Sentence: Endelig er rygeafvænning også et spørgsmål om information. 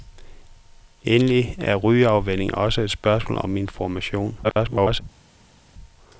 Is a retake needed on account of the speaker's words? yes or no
yes